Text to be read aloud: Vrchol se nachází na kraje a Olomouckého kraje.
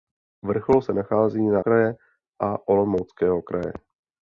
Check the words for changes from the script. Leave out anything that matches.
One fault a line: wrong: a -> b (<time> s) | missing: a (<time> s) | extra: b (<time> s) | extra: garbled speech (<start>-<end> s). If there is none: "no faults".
no faults